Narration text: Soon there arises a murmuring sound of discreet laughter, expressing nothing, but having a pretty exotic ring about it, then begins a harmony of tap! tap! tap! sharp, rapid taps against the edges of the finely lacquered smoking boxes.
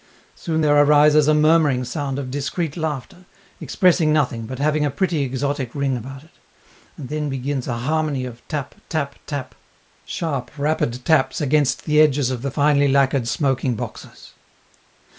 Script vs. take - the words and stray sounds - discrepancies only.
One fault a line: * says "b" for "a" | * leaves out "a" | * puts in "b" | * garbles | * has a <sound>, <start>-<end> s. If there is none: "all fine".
* puts in "and"